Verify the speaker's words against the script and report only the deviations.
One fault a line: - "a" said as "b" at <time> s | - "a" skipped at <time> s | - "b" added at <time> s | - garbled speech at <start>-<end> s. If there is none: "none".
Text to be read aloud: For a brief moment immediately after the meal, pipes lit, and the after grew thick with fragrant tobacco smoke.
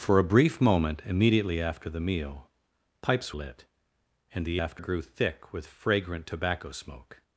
none